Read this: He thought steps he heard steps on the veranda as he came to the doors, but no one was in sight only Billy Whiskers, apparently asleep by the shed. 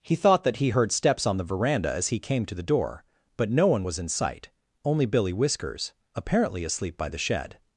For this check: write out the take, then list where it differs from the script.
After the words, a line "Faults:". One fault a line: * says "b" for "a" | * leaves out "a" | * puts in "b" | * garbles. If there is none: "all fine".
He thought that he heard steps on the veranda as he came to the door, but no one was in sight only Billy Whiskers, apparently asleep by the shed.
Faults:
* says "that" for "steps"
* says "door" for "doors"